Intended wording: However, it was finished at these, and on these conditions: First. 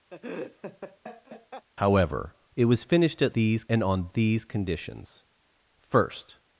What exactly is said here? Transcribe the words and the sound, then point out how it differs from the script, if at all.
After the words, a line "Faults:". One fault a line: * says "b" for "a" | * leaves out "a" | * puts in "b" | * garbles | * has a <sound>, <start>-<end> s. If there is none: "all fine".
However, it was finished at these, and on these conditions: First.
Faults:
* has a laugh, 0.1-1.7 s